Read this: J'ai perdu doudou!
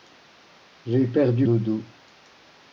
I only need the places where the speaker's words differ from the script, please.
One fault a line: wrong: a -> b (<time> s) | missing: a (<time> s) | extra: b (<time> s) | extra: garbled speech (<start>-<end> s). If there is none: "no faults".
no faults